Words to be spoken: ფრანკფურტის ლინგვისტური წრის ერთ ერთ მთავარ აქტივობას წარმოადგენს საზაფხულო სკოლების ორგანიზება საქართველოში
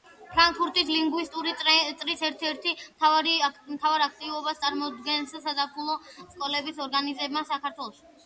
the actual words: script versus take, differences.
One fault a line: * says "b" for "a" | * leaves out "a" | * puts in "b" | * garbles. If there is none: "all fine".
all fine